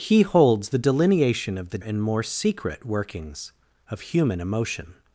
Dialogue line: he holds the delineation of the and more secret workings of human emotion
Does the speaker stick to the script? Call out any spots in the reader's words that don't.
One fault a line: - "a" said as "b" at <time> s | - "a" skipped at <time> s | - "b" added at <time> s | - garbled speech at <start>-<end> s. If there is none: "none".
none